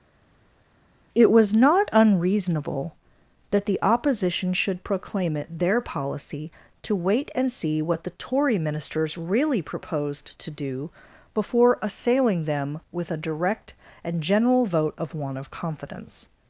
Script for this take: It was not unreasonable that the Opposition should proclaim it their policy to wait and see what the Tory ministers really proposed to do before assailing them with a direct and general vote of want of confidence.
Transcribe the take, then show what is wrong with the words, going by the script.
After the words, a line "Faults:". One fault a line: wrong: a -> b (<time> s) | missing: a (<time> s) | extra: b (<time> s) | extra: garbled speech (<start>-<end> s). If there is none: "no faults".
It was not unreasonable that the Opposition should proclaim it their policy to wait and see what the Tory ministers really proposed to do before assailing them with a direct and general vote of want of confidence.
Faults:
no faults